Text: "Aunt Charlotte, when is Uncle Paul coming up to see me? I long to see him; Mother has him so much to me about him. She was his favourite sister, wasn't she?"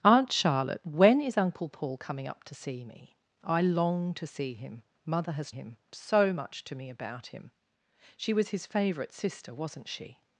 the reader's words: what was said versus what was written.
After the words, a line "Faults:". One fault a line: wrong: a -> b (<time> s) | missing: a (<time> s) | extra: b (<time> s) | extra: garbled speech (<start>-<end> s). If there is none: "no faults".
"Aunt Charlotte, when is Uncle Paul coming up to see me? I long to see him; Mother has him so much to me about him. She was his favourite sister, wasn't she?"
Faults:
no faults